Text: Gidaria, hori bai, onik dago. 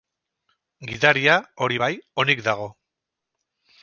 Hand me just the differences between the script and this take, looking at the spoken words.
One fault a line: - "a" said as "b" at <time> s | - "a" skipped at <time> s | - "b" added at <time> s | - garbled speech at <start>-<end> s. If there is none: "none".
none